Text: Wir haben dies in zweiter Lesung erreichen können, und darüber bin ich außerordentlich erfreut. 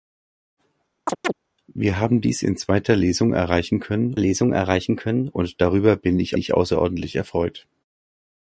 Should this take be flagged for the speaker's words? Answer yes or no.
yes